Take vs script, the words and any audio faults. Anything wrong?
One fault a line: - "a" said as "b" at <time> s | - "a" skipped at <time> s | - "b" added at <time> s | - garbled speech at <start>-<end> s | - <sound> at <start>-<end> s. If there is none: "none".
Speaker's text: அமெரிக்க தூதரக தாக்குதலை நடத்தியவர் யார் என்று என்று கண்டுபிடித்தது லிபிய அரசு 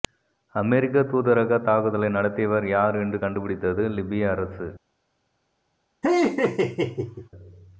- "என்று" skipped at 3.2 s
- laugh at 6.0-7.3 s